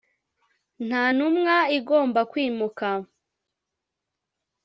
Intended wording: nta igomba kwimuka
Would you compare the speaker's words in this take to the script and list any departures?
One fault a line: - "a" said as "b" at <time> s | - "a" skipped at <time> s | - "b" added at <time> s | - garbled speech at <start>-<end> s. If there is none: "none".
- "ntumwa" added at 1.1 s